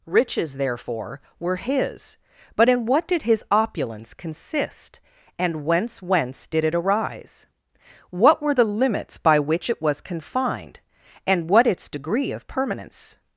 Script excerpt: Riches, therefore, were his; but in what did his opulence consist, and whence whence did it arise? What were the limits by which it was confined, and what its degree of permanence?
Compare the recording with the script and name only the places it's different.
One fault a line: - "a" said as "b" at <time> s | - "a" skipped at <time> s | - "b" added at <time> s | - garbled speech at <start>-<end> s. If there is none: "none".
none